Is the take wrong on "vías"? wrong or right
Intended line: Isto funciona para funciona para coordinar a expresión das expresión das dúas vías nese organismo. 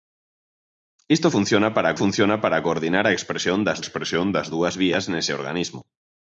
right